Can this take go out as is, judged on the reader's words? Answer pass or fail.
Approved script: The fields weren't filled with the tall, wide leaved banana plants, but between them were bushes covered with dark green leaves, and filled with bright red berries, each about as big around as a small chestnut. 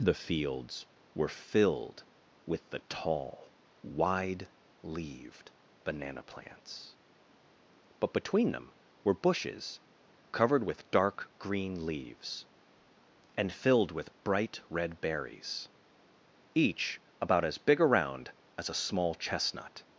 fail